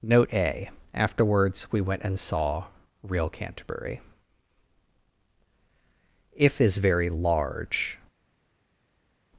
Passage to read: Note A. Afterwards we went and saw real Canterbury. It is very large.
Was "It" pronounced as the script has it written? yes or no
no